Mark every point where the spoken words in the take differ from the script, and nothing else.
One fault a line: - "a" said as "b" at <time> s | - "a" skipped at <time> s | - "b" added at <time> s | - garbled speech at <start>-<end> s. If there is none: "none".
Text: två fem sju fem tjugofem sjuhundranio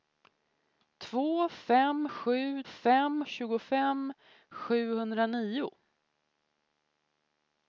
none